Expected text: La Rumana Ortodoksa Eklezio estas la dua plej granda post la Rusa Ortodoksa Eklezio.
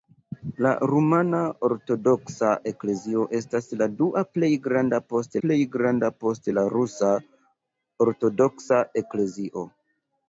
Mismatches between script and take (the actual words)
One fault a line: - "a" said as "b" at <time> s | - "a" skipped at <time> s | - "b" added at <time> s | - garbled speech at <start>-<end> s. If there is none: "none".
- "plej granda post" added at 5.5 s